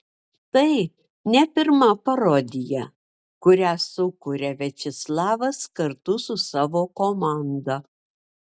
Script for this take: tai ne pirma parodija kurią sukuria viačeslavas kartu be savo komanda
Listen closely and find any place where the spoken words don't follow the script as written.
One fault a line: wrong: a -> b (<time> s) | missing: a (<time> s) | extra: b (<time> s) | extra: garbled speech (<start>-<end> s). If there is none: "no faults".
wrong: be -> su (6.3 s)